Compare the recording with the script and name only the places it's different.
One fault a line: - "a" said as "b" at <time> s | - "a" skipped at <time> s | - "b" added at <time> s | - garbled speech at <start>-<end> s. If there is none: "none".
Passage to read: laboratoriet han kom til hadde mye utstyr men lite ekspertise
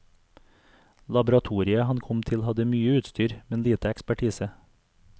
none